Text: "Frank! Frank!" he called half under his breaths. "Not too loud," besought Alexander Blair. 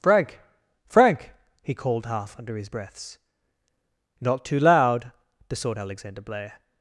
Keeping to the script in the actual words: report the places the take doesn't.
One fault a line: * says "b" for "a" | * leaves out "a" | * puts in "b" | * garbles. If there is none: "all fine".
all fine